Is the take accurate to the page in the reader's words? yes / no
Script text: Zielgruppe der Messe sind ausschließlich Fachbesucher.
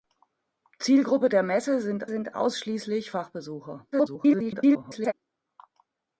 no